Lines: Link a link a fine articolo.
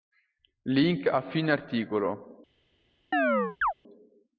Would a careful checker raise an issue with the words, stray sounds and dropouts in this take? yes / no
yes